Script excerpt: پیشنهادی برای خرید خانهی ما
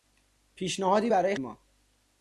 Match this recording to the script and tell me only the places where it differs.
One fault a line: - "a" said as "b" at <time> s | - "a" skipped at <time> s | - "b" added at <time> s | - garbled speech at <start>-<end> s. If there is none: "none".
- "خرید خانهی" skipped at 1.3 s